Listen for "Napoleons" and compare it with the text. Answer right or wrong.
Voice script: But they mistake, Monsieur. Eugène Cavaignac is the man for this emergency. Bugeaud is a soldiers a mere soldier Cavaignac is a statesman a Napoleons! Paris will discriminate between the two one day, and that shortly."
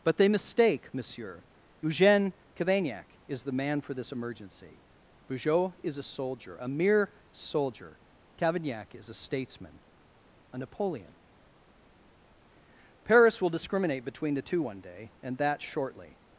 wrong